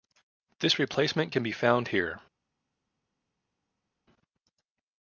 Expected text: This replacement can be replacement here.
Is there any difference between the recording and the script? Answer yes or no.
yes